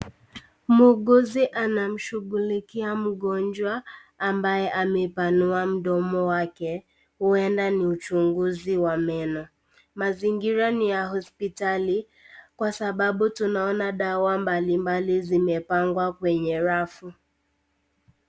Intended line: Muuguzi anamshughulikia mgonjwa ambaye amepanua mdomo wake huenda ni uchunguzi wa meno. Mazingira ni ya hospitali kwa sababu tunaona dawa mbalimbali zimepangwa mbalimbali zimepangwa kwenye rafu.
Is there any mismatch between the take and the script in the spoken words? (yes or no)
yes